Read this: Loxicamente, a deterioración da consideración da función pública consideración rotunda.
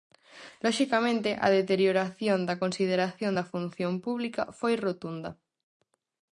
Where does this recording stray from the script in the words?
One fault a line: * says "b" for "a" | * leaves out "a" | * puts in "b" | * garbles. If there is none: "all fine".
* says "foi" for "consideración"